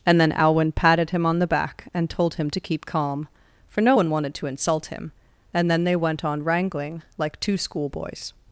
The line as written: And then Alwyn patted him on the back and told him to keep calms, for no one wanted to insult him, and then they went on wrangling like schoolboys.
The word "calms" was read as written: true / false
false